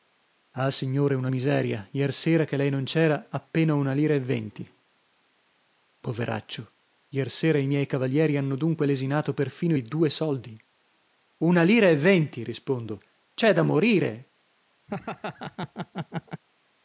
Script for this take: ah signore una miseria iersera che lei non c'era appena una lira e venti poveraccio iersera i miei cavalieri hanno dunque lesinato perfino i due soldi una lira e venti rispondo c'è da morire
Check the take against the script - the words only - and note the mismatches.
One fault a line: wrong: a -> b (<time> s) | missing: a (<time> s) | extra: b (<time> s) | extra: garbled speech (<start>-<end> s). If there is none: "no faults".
no faults